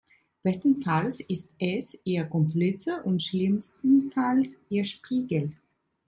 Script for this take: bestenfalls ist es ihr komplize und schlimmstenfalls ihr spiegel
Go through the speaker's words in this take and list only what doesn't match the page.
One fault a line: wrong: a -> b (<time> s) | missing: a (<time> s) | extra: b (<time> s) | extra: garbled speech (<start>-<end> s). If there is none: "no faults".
no faults